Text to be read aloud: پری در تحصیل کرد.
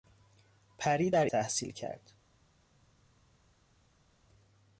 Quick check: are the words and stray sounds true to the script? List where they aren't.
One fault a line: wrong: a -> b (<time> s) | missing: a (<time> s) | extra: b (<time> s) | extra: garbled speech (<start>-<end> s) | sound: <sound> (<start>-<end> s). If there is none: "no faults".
no faults